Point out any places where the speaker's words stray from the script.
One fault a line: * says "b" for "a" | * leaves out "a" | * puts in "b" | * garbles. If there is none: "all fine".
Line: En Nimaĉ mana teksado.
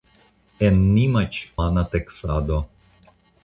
all fine